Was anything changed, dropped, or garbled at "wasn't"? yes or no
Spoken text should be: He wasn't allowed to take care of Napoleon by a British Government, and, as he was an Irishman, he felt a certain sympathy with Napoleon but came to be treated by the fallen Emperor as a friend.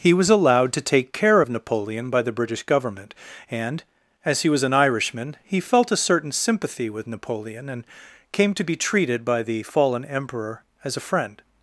yes